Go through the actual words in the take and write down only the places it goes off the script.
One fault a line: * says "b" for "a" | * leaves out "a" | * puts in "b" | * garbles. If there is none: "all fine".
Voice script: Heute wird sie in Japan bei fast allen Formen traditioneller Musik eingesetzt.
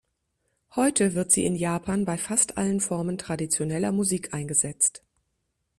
all fine